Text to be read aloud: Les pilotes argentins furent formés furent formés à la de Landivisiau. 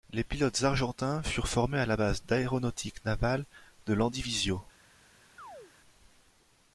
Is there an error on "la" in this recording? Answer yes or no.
yes